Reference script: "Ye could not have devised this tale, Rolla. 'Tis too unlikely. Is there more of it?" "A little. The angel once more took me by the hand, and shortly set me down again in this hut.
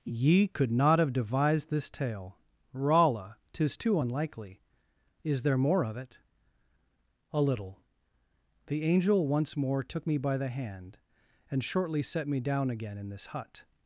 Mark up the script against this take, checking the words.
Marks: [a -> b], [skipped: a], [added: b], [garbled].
"Ye could not have devised this tale, Rolla. 'Tis too unlikely. Is there more of it?" "A little. The angel once more took me by the hand, and shortly set me down again in this hut.